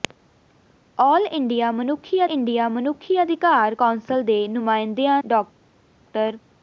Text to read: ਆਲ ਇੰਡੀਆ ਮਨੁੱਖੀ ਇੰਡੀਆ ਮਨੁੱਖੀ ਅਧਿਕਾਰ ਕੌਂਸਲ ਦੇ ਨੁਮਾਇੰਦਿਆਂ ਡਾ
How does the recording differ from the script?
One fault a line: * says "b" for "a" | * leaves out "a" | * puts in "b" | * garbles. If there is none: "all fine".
all fine